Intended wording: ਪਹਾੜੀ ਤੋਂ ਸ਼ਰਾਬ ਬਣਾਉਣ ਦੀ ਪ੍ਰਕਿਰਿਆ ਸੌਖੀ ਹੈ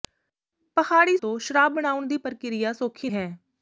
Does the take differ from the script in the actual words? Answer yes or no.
no